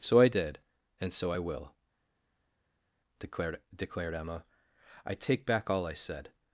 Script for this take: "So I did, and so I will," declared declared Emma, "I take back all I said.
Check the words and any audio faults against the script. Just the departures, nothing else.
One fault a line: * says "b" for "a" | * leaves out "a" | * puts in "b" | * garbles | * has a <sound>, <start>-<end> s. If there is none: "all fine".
all fine